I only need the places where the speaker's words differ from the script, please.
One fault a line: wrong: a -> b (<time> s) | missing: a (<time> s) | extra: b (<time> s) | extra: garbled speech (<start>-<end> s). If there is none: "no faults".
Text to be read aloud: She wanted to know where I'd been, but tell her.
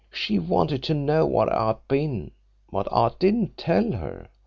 extra: I didn't (2.9 s)